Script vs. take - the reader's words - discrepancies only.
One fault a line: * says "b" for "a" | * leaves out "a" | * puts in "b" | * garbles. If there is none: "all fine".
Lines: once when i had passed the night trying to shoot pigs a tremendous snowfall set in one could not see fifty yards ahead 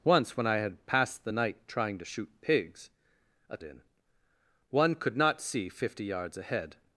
* leaves out "tremendous snowfall set"